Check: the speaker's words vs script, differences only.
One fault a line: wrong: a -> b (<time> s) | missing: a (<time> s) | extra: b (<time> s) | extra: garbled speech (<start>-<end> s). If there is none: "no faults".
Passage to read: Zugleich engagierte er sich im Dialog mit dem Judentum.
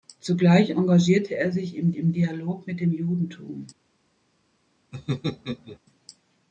extra: im (2.0 s)